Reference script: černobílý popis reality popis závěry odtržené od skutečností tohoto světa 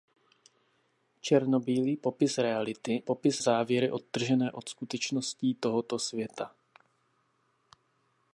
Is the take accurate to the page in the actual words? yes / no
yes